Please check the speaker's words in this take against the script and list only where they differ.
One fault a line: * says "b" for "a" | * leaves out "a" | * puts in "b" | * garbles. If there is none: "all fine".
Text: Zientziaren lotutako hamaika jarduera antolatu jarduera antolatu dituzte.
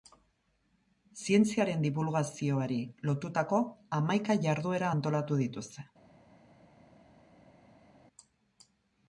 * puts in "dibulgazioari"
* leaves out "jarduera antolatu"